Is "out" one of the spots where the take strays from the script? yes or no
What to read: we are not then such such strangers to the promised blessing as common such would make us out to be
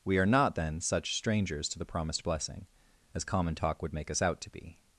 no